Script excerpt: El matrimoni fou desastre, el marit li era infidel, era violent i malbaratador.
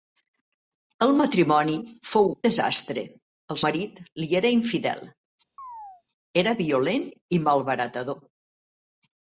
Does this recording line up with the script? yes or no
yes